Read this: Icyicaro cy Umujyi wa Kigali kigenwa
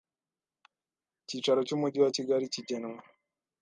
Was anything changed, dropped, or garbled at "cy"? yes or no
no